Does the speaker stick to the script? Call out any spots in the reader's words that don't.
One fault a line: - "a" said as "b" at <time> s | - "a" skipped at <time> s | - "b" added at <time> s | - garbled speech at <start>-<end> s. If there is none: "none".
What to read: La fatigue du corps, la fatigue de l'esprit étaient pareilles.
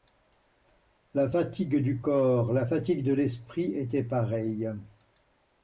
none